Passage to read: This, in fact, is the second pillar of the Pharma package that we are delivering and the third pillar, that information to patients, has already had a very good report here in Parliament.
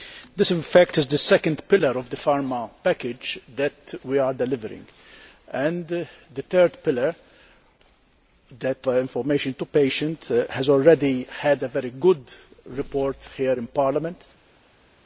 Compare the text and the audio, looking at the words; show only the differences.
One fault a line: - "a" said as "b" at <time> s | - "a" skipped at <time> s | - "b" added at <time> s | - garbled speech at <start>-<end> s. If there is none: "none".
none